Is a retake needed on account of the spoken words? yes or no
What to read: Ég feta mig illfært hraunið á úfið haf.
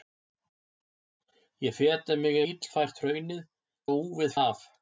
no